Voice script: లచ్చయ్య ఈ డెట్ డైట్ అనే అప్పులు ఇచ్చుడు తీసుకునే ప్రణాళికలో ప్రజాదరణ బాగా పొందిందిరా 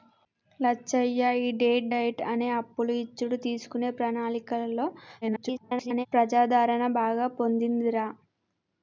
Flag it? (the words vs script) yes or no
yes